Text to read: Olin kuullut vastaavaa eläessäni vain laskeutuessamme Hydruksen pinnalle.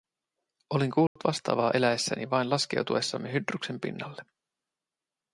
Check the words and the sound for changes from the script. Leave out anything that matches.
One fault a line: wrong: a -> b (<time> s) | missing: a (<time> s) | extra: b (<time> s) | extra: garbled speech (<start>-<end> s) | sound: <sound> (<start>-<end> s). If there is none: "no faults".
sound: dropout (1.1-1.2 s)